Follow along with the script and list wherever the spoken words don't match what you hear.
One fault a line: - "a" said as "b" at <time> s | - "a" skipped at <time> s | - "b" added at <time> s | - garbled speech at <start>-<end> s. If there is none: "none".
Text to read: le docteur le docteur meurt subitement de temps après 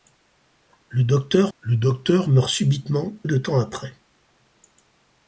none